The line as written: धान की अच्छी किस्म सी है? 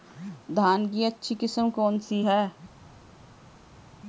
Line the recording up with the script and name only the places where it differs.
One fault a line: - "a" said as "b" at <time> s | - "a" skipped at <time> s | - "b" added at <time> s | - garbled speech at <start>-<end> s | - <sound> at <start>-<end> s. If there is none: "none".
- "कौन" added at 1.7 s